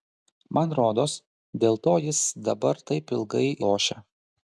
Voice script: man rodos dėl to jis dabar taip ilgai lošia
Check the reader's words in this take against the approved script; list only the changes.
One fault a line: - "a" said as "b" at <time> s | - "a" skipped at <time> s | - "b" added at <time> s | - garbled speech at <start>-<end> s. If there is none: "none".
none